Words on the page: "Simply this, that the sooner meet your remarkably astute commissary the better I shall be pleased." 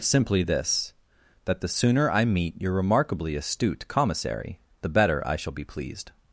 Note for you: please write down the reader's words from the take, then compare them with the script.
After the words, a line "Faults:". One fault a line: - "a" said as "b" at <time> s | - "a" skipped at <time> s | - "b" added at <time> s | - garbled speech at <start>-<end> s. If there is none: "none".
"Simply this, that the sooner I meet your remarkably astute commissary the better I shall be pleased."
Faults:
- "I" added at 2.1 s